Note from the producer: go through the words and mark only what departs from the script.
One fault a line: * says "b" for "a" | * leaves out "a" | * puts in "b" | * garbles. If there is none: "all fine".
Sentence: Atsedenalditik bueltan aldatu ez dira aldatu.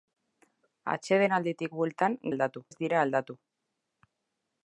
all fine